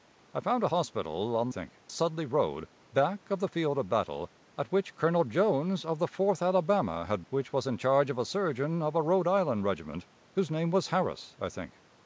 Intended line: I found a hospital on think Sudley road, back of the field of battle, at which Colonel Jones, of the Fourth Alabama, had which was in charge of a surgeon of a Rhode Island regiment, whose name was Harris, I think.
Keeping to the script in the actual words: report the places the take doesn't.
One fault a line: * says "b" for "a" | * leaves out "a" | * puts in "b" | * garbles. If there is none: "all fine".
all fine